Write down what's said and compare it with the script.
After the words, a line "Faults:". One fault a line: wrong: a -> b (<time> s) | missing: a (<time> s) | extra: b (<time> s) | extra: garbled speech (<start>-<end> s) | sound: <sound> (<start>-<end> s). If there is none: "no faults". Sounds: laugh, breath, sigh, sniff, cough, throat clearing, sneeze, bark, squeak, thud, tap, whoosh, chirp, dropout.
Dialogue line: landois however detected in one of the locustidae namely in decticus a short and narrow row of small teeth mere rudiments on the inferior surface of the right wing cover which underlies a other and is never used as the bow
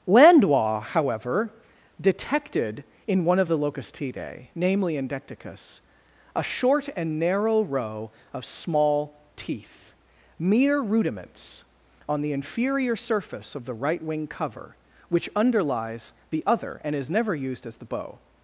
landois however detected in one of the locustidae namely in decticus a short and narrow row of small teeth mere rudiments on the inferior surface of the right wing cover which underlies the other and is never used as the bow
Faults:
wrong: a -> the (16.3 s)